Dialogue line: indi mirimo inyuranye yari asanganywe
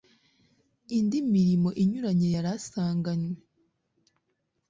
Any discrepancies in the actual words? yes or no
no